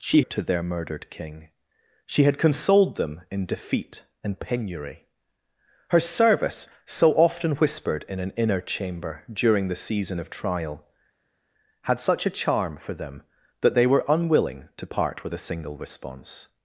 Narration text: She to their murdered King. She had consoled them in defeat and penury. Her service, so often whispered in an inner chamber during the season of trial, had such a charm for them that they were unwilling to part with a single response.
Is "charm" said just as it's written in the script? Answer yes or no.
yes